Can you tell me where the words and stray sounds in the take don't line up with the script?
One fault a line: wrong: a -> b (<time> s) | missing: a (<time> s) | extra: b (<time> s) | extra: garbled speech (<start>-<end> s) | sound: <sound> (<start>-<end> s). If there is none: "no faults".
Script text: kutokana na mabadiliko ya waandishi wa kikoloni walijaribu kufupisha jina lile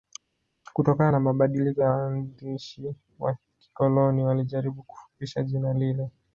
no faults